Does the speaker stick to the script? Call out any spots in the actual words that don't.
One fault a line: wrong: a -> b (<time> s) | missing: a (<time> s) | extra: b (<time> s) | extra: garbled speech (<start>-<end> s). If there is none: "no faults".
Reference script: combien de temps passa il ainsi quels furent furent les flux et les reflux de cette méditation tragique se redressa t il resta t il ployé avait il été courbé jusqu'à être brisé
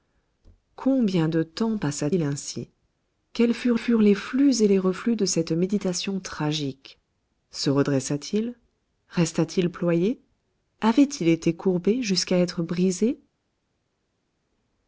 no faults